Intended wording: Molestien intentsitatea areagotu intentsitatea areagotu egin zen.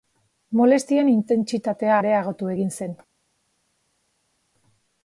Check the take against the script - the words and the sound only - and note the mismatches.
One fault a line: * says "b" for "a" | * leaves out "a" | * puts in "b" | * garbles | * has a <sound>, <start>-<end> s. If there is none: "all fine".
* leaves out "intentsitatea areagotu"